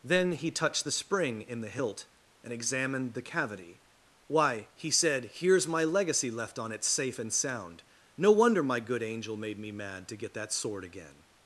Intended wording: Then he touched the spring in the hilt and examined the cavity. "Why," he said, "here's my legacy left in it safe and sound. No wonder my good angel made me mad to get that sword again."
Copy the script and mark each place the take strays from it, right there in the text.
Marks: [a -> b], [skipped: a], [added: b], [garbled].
Then he touched the spring in the hilt and examined the cavity. "Why," he said, "here's my legacy left [in -> on] it safe and sound. No wonder my good angel made me mad to get that sword again."